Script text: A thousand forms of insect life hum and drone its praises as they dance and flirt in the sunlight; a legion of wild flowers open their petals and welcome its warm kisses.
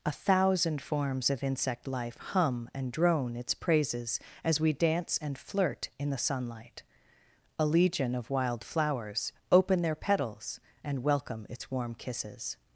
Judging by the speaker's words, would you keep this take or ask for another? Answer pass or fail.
fail